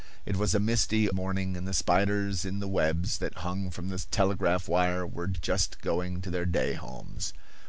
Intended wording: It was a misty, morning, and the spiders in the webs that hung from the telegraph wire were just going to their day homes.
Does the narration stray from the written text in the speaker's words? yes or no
no